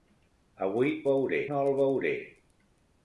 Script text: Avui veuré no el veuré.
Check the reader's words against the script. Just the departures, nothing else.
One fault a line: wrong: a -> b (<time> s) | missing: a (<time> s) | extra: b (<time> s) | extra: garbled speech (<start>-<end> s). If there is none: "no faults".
no faults